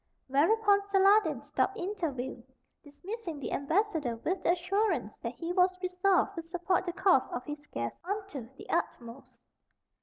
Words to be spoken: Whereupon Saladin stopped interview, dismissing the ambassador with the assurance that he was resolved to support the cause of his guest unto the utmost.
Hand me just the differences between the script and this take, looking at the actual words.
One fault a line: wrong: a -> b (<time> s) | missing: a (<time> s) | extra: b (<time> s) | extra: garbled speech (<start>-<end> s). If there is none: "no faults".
no faults